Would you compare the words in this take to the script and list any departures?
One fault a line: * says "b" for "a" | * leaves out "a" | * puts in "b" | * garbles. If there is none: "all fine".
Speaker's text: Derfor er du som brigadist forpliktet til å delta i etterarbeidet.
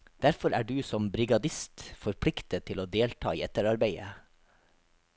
all fine